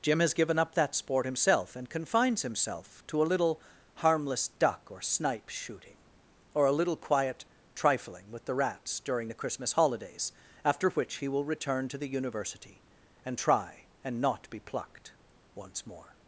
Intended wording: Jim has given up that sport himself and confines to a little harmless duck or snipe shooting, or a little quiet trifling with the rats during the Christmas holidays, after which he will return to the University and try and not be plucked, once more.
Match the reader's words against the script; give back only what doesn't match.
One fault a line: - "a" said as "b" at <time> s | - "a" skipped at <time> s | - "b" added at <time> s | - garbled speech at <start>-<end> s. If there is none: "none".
- "himself" added at 2.4 s